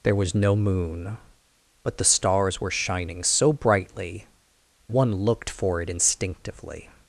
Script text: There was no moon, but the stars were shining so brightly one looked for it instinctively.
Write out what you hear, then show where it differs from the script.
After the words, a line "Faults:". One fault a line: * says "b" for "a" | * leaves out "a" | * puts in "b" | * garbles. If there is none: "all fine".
There was no moon, but the stars were shining so brightly one looked for it instinctively.
Faults:
all fine